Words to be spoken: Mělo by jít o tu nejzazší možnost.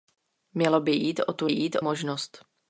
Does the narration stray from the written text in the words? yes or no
yes